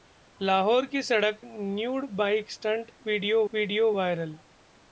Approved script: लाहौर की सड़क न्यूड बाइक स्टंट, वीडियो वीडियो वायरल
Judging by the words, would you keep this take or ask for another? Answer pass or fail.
pass